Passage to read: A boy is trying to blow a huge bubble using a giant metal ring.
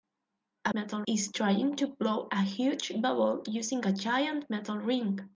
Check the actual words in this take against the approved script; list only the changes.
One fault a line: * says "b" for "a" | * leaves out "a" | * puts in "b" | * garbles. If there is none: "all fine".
* says "metal" for "boy"